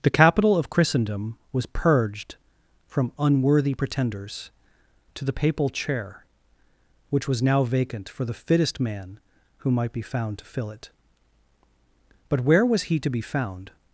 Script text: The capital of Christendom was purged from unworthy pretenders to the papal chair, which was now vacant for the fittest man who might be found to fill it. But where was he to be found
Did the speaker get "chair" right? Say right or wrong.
right